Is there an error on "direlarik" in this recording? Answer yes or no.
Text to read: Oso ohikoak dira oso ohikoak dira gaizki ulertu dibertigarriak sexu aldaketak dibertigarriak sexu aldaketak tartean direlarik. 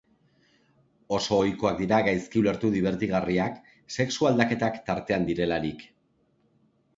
no